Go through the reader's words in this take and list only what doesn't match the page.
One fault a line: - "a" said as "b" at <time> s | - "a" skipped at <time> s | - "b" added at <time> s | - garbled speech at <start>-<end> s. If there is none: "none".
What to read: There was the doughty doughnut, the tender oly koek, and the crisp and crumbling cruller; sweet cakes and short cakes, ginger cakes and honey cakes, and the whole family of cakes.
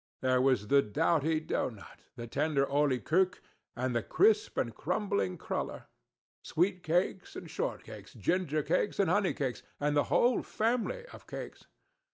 none